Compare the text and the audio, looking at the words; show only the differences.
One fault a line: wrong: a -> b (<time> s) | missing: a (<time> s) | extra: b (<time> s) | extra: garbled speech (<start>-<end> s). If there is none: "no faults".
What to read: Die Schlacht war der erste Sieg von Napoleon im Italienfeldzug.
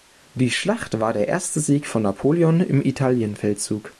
no faults